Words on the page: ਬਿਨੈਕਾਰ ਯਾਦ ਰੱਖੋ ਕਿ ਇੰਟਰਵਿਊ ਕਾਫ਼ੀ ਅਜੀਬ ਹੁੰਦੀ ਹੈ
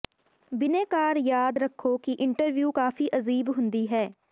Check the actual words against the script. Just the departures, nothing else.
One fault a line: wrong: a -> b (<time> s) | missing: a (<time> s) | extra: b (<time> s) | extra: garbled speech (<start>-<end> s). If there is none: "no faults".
no faults